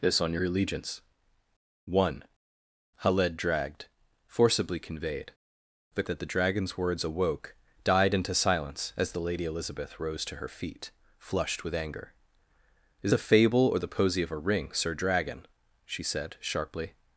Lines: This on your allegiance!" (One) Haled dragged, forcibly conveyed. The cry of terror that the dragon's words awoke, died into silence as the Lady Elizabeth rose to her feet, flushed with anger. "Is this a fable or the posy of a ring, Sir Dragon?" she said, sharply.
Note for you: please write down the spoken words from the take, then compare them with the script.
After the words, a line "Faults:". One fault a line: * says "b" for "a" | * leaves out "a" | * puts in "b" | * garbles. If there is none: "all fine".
This on your allegiance!" (One) Haled dragged, forcibly conveyed. The that the dragon's words awoke, died into silence as the Lady Elizabeth rose to her feet, flushed with anger. "Is a fable or the posy of a ring, Sir Dragon?" she said, sharply.
Faults:
* leaves out "cry of terror"
* leaves out "this"